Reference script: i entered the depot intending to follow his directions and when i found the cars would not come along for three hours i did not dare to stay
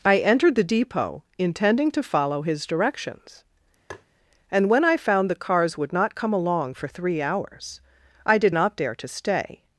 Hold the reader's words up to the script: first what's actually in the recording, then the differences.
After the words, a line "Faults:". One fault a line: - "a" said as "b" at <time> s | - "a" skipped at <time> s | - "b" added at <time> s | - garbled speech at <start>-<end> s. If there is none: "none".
i entered the depot intending to follow his directions and when i found the cars would not come along for three hours i did not dare to stay
Faults:
none